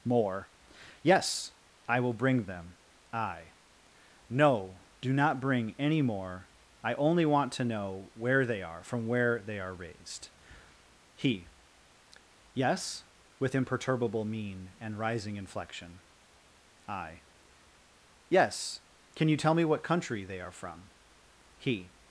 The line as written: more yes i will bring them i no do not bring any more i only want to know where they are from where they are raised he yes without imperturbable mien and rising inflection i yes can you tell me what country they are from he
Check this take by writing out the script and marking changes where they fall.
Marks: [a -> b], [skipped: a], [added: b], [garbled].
more yes i will bring them i no do not bring any more i only want to know where they are from where they are raised he yes [without -> with] imperturbable mien and rising inflection i yes can you tell me what country they are from he